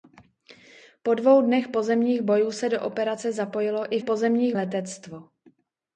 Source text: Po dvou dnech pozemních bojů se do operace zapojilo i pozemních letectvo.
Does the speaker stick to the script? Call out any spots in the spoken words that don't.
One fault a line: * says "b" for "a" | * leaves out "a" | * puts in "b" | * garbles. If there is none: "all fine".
all fine